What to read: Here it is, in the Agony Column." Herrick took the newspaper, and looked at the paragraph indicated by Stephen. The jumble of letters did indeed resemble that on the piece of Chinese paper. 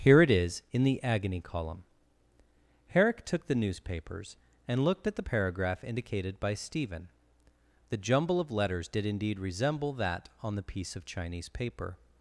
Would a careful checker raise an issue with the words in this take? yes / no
yes